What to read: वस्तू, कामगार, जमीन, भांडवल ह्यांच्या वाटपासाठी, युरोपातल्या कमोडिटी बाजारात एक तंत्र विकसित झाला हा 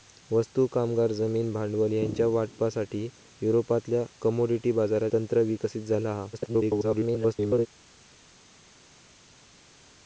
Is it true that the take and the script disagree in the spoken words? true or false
true